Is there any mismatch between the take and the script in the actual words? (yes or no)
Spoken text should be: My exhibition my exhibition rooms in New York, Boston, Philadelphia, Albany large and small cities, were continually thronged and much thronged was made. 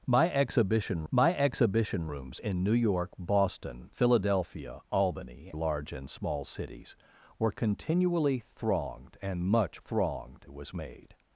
no